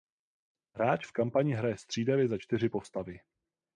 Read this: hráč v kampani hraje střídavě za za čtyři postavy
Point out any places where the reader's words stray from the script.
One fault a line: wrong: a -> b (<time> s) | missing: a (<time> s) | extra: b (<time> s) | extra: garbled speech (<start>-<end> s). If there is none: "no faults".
missing: za (2.4 s)